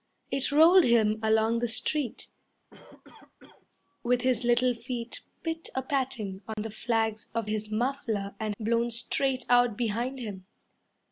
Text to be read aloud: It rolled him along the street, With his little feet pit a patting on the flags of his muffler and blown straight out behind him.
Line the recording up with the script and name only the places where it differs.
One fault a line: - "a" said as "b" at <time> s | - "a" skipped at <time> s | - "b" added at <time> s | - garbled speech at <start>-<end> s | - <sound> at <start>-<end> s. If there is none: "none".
- cough at 2.7-3.7 s
- dropout at 6.5-6.6 s